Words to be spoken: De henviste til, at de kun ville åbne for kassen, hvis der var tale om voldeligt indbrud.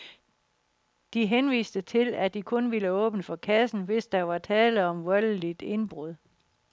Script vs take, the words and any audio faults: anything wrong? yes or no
no